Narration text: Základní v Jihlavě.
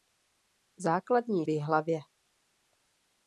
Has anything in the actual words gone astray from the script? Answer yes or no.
no